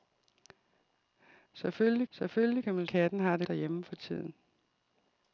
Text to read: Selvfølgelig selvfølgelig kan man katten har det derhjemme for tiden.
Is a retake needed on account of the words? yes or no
no